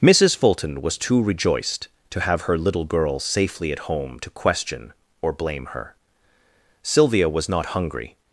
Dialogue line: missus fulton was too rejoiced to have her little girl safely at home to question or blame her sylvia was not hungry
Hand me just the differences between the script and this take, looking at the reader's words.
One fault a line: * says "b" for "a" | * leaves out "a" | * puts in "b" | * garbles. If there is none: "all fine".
all fine